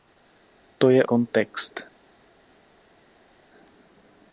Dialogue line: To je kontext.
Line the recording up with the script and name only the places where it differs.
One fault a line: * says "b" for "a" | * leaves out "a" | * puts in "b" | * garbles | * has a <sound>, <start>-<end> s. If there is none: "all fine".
all fine